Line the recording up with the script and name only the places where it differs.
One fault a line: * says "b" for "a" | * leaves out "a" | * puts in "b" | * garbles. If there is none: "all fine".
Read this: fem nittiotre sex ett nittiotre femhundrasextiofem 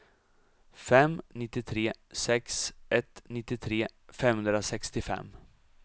all fine